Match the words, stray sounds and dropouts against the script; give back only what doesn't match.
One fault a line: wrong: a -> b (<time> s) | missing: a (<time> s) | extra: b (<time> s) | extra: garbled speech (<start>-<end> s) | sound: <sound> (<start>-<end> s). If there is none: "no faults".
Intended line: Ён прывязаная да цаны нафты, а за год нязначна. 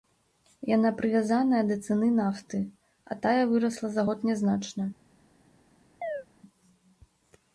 wrong: Ён -> Яна (0.8 s)
extra: тая вырасла (3.2 s)
sound: chirp (6.0-6.3 s)